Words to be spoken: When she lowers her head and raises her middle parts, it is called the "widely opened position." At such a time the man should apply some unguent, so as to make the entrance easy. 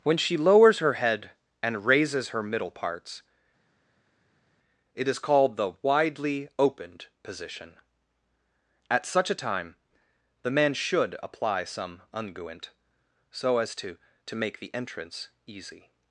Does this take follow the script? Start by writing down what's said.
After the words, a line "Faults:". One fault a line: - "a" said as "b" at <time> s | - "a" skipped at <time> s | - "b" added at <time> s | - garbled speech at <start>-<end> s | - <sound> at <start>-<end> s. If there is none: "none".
When she lowers her head and raises her middle parts, it is called the "widely opened position." At such a time the man should apply some unguent, so as to to make the entrance easy.
Faults:
- "to" added at 14.2 s